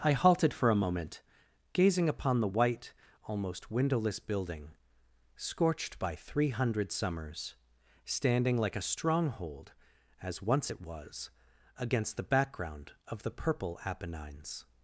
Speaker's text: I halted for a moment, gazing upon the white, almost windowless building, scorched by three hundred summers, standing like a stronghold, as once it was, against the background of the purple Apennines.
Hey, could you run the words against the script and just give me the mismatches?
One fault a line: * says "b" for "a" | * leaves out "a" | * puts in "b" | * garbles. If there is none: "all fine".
all fine